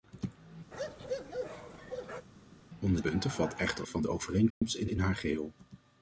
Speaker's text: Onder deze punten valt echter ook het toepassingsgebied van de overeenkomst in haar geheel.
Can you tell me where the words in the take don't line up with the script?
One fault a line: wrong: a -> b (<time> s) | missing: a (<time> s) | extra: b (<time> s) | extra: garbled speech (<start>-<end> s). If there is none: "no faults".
missing: deze (3.0 s)
missing: ook het toepassingsgebied (3.9 s)
extra: in (4.8 s)